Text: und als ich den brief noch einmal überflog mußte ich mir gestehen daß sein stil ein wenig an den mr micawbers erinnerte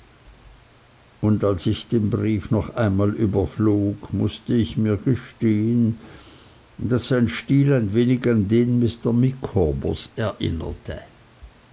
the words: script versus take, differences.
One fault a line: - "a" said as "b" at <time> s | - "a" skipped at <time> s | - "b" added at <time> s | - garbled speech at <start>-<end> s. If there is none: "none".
none